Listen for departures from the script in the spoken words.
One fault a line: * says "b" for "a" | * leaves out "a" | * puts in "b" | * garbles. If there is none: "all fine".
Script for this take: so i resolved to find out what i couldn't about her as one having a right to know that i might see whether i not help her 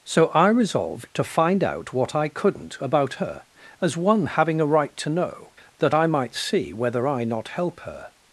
all fine